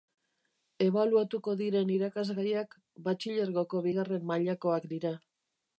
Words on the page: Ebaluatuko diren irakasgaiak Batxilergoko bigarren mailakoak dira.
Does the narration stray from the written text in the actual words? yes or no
no